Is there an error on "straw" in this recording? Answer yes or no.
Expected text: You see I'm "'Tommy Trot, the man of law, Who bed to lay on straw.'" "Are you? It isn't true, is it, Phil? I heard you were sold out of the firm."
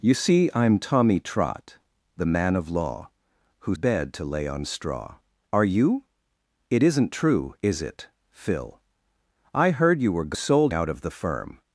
no